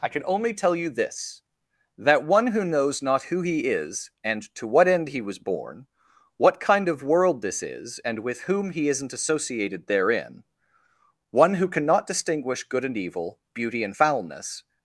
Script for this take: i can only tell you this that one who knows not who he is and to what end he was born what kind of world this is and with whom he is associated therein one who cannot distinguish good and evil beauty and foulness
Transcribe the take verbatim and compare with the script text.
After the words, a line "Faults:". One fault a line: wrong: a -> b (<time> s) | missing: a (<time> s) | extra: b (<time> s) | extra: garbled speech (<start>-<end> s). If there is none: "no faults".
i can only tell you this that one who knows not who he is and to what end he was born what kind of world this is and with whom he isn't associated therein one who cannot distinguish good and evil beauty and foulness
Faults:
wrong: is -> isn't (8.9 s)